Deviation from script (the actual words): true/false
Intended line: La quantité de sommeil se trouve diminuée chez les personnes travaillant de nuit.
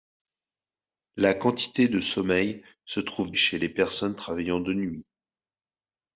true